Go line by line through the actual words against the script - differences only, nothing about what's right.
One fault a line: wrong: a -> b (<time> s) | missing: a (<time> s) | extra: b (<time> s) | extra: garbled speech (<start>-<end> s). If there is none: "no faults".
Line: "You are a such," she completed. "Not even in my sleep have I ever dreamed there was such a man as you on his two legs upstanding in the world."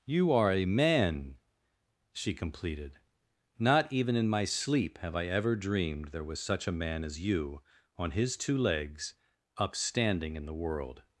wrong: such -> man (0.7 s)